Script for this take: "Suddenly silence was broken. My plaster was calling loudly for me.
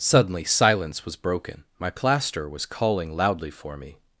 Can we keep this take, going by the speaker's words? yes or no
yes